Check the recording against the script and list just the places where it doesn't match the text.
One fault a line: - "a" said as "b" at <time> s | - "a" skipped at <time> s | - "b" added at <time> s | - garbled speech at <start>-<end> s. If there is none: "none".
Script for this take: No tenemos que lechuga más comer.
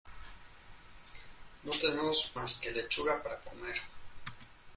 - "más" added at 2.3 s
- "más" said as "para" at 3.2 s